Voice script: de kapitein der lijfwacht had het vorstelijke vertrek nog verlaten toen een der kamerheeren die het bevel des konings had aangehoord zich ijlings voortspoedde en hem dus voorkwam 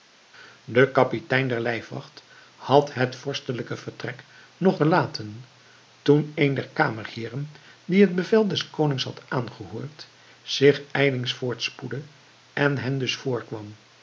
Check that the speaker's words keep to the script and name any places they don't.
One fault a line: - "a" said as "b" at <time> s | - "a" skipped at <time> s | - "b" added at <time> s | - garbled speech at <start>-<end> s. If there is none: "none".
none